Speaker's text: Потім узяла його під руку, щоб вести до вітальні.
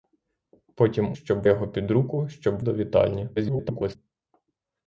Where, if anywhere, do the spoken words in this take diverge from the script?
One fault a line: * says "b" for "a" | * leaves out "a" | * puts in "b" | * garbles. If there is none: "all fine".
* says "щоб" for "узяла"
* leaves out "вести"
* garbles